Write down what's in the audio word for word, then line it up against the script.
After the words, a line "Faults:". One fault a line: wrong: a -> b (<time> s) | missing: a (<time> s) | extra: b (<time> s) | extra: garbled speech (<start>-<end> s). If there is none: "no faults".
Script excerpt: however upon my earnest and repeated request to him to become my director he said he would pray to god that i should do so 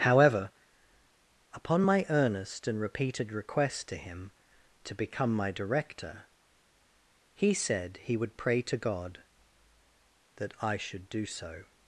however upon my earnest and repeated request to him to become my director he said he would pray to god that i should do so
Faults:
no faults